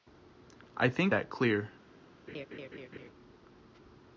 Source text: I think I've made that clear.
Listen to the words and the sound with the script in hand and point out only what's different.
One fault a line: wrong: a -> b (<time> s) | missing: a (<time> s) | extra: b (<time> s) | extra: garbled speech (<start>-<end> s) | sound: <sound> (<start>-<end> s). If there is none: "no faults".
missing: I've made (1.1 s)
sound: laugh (2.3-3.1 s)